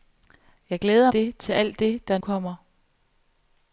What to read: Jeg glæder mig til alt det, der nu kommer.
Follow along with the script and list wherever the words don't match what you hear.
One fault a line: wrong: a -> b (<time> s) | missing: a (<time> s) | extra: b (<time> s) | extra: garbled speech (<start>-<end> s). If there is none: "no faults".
wrong: mig -> det (1.1 s)
missing: nu (2.2 s)